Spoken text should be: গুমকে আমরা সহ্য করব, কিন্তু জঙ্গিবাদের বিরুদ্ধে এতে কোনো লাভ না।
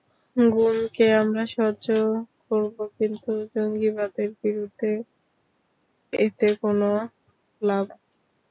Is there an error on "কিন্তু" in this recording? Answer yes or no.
no